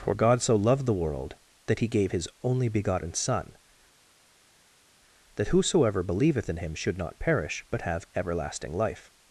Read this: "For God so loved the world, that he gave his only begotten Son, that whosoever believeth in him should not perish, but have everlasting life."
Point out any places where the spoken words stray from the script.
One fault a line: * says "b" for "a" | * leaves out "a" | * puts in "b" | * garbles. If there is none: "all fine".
all fine